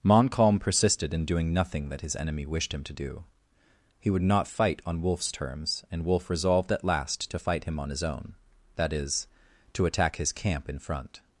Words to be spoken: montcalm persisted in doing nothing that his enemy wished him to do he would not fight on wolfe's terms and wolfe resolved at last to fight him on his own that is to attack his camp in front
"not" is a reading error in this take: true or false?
false